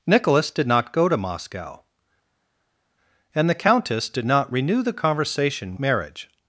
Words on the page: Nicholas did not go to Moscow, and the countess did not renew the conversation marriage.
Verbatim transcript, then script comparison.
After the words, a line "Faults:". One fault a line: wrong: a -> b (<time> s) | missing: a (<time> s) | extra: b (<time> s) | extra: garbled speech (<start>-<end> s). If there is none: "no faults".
Nicholas did not go to Moscow, and the countess did not renew the conversation marriage.
Faults:
no faults